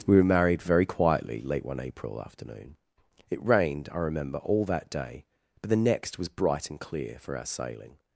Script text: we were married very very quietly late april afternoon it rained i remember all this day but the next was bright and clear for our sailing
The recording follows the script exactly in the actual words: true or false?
false